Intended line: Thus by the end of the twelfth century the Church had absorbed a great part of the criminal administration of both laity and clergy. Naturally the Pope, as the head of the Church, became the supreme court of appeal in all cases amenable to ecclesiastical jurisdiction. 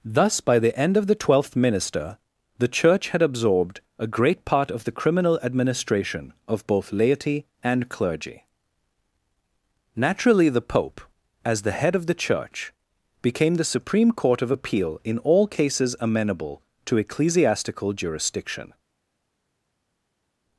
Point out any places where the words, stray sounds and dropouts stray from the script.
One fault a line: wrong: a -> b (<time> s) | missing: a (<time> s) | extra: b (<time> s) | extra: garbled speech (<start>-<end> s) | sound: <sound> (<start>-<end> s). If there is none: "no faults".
wrong: century -> minister (1.6 s)